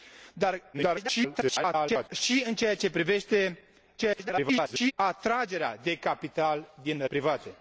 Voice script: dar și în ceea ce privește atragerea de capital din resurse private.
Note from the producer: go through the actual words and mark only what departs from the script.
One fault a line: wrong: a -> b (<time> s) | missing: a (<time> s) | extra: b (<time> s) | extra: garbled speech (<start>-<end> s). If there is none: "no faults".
extra: garbled speech (0.7-2.1 s)
extra: garbled speech (4.0-4.9 s)
missing: resurse (7.1 s)